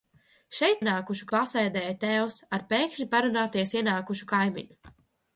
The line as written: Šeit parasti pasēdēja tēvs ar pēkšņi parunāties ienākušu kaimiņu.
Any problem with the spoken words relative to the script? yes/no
yes